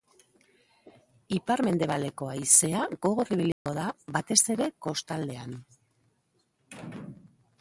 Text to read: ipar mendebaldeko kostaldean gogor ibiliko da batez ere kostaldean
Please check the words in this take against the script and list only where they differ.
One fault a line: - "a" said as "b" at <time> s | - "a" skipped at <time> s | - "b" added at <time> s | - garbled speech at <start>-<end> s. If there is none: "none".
- "kostaldean" said as "haizea" at 2.3 s